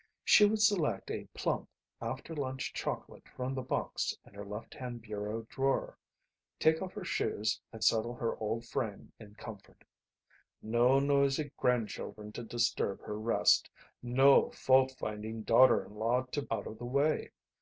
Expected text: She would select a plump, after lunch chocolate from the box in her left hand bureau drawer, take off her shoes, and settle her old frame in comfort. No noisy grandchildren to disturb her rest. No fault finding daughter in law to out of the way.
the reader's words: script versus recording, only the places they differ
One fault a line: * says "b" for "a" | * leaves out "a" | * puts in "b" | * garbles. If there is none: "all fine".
all fine